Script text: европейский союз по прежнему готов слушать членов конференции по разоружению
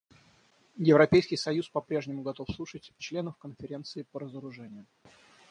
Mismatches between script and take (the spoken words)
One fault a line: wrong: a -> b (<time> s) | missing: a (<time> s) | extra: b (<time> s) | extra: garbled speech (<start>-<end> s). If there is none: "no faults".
no faults